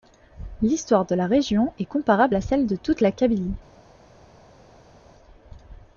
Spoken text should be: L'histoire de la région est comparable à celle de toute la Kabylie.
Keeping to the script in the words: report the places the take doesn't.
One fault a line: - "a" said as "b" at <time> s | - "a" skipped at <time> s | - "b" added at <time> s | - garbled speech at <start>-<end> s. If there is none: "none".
none